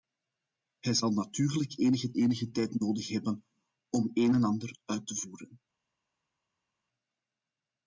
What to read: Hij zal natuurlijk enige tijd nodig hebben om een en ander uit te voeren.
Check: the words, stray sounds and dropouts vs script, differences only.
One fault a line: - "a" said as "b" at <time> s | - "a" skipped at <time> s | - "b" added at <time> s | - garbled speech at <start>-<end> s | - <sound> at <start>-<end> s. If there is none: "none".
- "enige" added at 2.1 s